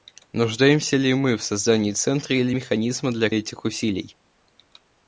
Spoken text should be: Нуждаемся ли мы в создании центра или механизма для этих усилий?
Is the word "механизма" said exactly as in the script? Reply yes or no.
yes